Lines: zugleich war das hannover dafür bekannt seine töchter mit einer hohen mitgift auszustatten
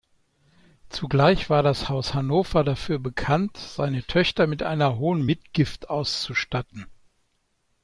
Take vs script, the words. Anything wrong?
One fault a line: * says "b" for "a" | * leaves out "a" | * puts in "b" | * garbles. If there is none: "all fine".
* puts in "haus"